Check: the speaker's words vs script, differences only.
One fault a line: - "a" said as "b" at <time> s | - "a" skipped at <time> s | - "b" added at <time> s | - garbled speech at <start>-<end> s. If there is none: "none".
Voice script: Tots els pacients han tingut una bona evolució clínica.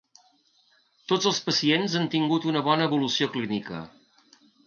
none